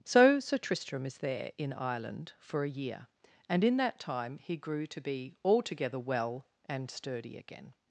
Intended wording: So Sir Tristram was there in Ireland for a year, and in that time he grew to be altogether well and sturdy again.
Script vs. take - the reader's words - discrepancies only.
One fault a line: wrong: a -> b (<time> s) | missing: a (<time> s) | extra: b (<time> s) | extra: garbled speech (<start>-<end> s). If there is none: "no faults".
wrong: was -> is (1.1 s)